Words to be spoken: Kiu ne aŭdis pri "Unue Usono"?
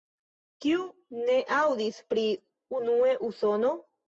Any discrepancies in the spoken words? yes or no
no